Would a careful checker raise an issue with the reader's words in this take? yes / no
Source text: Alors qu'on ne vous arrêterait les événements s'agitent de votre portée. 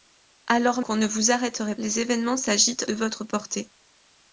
no